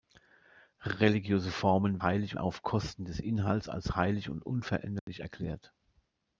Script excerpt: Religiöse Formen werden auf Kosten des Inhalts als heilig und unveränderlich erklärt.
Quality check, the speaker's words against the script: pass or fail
fail